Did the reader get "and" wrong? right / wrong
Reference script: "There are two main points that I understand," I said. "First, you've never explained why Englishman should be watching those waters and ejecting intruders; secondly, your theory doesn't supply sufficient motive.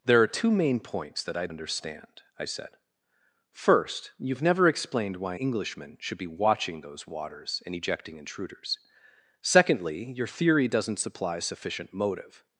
right